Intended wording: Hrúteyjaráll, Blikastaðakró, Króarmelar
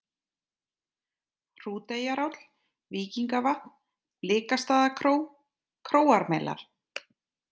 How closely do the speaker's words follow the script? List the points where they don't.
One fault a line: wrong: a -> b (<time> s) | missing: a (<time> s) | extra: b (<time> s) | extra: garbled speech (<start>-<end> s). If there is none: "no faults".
extra: Víkingavatn (3.0 s)